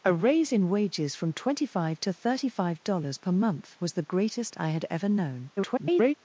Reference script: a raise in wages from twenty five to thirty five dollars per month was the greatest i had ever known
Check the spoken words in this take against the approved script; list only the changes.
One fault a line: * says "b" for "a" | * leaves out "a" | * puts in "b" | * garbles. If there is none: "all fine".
* garbles